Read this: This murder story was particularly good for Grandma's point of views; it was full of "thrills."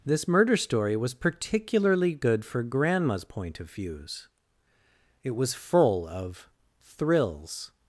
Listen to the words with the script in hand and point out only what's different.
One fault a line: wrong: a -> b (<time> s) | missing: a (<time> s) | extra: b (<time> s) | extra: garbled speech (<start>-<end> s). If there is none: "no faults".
no faults